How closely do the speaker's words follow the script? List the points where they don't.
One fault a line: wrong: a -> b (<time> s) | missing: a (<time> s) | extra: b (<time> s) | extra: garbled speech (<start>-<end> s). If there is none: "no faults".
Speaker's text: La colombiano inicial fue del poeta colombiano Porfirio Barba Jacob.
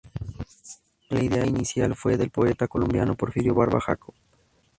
wrong: colombiano -> idea (1.2 s)